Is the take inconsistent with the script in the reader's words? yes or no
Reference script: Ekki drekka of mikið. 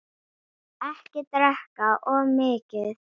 no